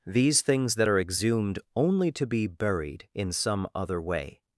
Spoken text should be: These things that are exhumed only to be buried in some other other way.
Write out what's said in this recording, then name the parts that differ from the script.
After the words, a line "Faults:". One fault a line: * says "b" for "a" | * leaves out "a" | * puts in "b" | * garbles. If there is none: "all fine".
These things that are exhumed only to be buried in some other way.
Faults:
* leaves out "other"